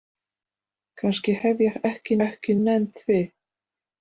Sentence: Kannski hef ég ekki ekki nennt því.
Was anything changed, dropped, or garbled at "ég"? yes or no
no